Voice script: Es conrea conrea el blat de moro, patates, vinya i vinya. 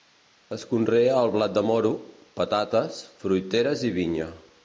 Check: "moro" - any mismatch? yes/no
no